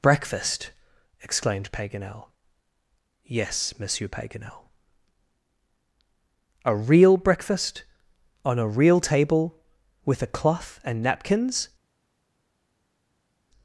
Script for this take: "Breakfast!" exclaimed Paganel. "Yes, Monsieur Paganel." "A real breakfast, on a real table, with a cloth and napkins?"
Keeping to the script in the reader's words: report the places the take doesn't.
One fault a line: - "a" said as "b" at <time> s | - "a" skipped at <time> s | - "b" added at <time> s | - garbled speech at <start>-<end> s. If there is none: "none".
none